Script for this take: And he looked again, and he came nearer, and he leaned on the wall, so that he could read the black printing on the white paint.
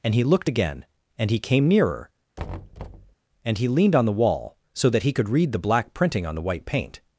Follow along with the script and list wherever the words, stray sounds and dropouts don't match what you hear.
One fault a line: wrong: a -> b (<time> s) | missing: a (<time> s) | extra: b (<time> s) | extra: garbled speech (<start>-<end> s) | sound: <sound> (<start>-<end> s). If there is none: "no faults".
sound: thud (2.4-3.1 s)